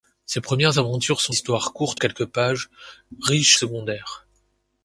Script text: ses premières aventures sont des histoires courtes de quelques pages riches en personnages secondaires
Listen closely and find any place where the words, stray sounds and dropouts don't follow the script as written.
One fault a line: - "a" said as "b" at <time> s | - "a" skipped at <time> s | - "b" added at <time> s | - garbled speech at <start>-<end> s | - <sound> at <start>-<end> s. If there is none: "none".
- "des" skipped at 1.4 s
- "de" skipped at 2.0 s
- "en personnages" skipped at 3.6 s